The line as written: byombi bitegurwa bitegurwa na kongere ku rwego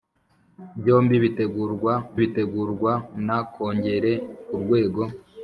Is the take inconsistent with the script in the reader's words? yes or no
no